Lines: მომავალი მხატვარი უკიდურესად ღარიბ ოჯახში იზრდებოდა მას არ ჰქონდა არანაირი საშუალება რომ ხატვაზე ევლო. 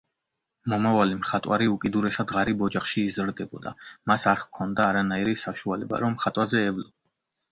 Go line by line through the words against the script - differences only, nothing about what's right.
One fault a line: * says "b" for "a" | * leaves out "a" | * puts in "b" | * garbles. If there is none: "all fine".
all fine